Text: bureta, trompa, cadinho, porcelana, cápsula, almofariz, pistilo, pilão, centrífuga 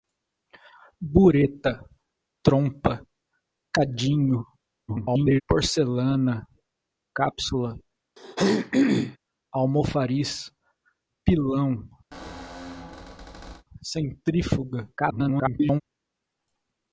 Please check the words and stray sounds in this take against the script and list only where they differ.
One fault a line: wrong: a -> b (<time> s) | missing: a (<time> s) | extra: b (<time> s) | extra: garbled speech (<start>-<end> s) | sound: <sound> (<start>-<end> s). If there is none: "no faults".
extra: garbled speech (4.9-5.4 s)
sound: throat clearing (8.2-9.2 s)
missing: pistilo (10.5 s)
sound: squeak (12.1-13.6 s)
extra: garbled speech (15.0-15.8 s)